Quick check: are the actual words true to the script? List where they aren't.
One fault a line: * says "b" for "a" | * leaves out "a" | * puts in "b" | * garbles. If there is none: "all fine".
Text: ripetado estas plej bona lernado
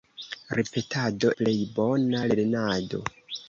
* leaves out "estas"